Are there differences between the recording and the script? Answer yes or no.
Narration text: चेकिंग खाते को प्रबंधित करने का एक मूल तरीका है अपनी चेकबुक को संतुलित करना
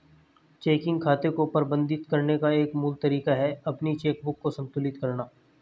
no